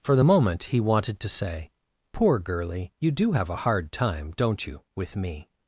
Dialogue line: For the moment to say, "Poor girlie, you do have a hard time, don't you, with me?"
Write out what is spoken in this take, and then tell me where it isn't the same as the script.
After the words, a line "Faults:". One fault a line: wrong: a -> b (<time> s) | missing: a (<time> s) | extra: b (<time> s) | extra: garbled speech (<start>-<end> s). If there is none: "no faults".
For the moment he wanted to say, "Poor girlie, you do have a hard time, don't you, with me?"
Faults:
extra: he wanted (0.6 s)